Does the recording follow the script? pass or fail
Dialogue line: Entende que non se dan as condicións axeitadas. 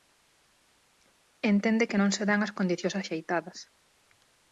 pass